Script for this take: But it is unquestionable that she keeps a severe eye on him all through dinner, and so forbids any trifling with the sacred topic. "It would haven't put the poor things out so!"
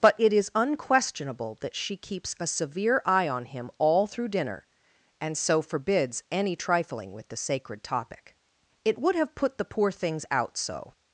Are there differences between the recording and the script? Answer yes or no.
yes